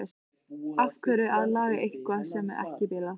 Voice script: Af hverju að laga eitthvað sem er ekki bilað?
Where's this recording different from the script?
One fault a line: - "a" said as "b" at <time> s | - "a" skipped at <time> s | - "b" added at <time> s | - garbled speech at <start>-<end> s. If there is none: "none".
none